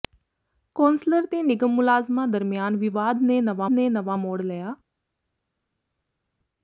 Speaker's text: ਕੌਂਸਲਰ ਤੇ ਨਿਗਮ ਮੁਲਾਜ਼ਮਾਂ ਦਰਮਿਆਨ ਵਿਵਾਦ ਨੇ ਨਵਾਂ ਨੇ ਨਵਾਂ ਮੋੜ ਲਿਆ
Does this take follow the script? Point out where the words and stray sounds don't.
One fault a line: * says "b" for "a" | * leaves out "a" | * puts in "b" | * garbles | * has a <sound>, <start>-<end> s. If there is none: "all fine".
all fine